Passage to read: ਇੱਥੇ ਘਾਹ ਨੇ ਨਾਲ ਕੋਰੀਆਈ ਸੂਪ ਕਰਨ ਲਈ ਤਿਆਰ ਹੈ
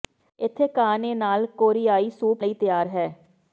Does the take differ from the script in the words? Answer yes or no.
yes